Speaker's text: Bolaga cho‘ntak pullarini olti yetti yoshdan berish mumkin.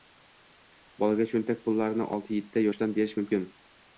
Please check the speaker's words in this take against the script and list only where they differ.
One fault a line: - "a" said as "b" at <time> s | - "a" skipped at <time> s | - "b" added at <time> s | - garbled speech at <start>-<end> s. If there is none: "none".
none